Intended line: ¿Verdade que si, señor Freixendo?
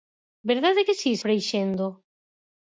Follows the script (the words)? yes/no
no